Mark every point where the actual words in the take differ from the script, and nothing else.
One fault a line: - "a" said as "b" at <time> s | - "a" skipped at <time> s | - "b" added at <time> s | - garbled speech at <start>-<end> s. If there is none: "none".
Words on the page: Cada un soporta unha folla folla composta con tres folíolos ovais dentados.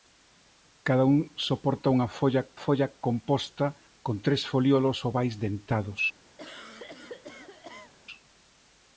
none